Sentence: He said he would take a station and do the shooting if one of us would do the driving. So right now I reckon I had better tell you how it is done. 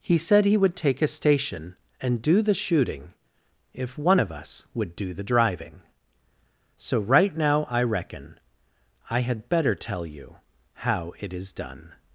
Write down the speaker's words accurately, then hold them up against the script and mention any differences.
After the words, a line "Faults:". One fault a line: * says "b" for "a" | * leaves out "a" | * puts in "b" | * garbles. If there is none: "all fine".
He said he would take a station and do the shooting if one of us would do the driving. So right now I reckon I had better tell you how it is done.
Faults:
all fine